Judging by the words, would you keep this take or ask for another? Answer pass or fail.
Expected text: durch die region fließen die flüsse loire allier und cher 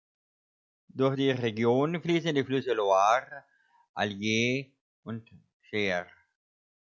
pass